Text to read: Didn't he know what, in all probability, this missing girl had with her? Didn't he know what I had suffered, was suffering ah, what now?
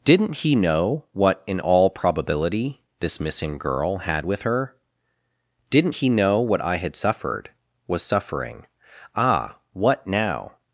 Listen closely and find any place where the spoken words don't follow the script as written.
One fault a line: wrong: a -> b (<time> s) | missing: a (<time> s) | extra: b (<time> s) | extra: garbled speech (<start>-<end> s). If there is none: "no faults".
no faults